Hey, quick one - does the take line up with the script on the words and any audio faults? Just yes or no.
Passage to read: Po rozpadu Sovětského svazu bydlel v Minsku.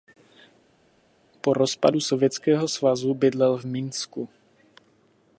yes